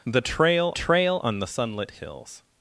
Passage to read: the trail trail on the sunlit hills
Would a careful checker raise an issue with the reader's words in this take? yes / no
no